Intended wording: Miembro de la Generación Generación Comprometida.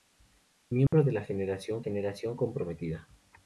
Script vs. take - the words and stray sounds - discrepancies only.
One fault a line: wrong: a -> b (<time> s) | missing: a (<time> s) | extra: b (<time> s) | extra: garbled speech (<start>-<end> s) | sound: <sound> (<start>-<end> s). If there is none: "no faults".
sound: dropout (0.9-0.9 s)